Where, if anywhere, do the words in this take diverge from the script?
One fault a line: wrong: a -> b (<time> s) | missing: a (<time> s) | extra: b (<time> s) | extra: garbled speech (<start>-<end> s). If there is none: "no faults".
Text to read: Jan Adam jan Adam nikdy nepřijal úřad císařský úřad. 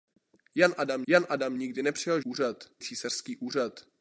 no faults